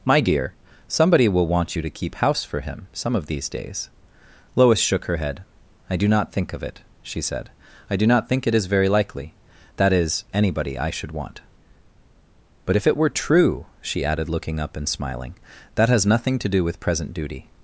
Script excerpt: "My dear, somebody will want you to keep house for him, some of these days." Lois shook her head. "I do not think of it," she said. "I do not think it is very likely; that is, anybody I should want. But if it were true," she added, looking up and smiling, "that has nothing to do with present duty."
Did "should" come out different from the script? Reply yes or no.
no